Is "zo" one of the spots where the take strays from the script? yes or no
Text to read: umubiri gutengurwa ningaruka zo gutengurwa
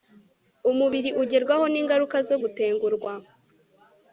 no